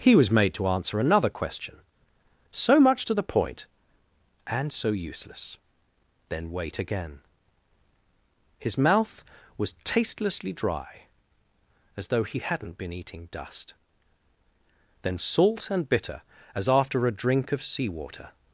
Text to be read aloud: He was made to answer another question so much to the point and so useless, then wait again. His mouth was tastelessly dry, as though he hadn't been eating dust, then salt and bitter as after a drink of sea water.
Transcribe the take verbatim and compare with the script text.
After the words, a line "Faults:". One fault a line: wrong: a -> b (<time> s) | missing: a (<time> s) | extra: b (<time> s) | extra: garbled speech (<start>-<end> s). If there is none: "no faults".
He was made to answer another question so much to the point and so useless, then wait again. His mouth was tastelessly dry, as though he hadn't been eating dust, then salt and bitter as after a drink of sea water.
Faults:
no faults